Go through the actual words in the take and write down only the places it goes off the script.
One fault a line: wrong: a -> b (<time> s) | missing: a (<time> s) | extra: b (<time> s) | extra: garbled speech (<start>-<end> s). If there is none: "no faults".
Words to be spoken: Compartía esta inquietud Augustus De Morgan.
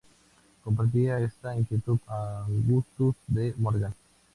no faults